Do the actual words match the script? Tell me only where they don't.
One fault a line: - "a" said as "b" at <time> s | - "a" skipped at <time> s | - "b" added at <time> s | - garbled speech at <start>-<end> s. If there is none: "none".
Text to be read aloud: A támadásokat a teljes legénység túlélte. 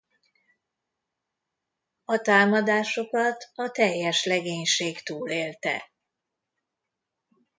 none